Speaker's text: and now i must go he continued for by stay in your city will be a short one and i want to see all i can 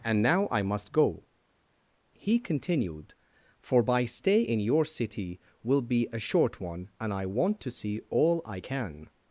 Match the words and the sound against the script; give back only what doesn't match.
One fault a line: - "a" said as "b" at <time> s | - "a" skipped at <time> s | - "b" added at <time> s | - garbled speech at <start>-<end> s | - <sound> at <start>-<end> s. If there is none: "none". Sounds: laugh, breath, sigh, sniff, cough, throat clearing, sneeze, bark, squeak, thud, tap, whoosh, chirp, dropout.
none